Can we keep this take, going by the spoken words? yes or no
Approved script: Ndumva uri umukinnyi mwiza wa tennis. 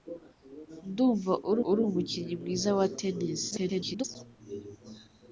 no